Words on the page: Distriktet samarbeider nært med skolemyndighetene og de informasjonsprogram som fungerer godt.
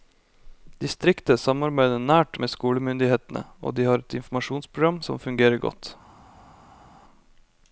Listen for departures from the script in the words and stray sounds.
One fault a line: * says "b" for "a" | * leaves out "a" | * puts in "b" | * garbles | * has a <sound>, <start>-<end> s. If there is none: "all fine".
* puts in "har et"